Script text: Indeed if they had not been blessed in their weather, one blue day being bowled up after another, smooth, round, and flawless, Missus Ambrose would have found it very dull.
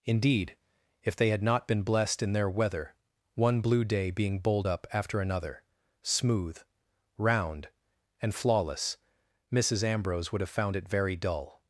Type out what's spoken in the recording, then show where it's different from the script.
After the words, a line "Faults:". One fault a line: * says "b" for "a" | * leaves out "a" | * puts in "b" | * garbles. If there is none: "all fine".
Indeed if they had not been blessed in their weather, one blue day being bowled up after another, smooth, round, and flawless, Missus Ambrose would have found it very dull.
Faults:
all fine